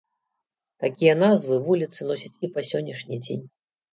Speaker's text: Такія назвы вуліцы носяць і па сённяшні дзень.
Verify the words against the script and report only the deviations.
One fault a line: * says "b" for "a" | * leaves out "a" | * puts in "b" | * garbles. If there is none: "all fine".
all fine